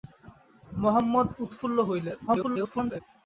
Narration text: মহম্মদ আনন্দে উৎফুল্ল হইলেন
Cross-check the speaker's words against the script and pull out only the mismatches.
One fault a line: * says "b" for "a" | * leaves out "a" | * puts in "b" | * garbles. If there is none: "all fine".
* leaves out "আনন্দে"
* garbles